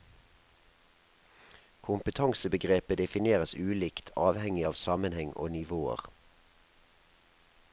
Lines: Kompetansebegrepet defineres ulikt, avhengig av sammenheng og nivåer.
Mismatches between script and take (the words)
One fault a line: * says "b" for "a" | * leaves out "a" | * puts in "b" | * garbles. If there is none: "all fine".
all fine